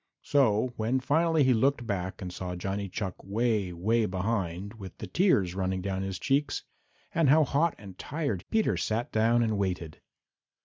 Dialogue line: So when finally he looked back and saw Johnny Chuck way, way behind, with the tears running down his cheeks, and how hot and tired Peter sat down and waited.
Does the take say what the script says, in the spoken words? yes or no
yes